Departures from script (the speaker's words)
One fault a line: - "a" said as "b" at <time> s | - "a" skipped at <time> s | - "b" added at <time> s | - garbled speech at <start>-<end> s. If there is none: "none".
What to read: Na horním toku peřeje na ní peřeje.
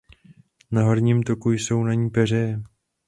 - "peřeje" said as "jsou" at 1.5 s